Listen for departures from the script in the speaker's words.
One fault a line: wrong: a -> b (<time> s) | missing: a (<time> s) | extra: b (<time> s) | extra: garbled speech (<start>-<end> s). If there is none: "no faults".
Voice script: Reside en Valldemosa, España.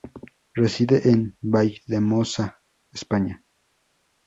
no faults